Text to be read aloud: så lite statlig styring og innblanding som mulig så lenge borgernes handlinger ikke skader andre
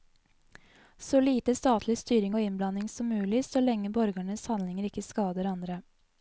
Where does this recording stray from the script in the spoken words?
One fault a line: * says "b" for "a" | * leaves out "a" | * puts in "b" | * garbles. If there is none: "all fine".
all fine